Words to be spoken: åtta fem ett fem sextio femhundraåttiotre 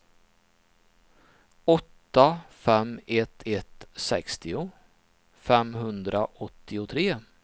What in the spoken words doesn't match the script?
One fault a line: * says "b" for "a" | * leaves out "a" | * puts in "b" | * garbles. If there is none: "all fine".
* says "ett" for "fem"